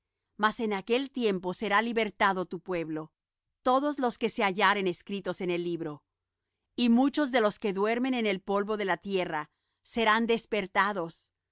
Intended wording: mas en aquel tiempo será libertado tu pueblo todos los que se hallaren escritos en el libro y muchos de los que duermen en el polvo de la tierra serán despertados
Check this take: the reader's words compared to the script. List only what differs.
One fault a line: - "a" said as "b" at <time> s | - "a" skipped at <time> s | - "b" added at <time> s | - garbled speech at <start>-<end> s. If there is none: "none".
none